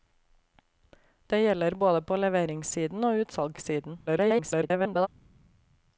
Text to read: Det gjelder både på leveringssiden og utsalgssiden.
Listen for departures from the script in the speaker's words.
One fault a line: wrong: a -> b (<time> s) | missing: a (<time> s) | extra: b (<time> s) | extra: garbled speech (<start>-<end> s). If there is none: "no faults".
extra: garbled speech (4.1-5.1 s)